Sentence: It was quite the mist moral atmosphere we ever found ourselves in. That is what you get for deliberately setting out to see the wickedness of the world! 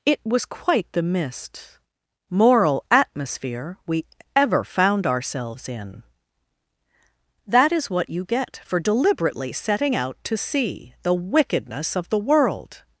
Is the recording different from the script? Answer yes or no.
no